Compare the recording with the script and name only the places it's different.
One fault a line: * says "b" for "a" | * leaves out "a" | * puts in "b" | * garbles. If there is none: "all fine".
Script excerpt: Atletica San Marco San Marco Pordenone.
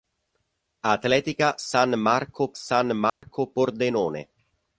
all fine